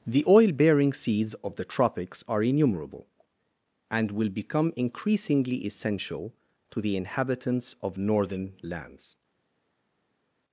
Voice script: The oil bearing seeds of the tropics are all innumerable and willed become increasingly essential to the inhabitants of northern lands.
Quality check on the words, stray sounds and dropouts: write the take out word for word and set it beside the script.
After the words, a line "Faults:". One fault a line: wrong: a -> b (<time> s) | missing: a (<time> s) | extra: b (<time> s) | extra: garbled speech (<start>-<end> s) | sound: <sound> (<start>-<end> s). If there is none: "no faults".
The oil bearing seeds of the tropics are innumerable and will become increasingly essential to the inhabitants of northern lands.
Faults:
missing: all (2.4 s)
wrong: willed -> will (4.1 s)